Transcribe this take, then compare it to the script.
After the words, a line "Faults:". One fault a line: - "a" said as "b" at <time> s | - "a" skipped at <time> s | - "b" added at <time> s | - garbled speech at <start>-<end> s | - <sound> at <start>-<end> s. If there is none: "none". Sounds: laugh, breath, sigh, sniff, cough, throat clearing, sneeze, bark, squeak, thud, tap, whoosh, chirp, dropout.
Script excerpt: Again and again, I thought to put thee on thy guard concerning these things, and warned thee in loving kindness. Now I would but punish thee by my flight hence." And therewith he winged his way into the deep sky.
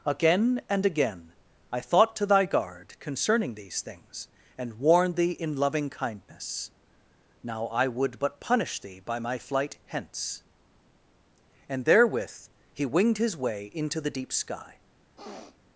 Again and again, I thought to thy guard concerning these things, and warned thee in loving kindness. Now I would but punish thee by my flight hence." And therewith he winged his way into the deep sky.
Faults:
- "put thee on" skipped at 2.2 s
- sniff at 15.2-15.6 s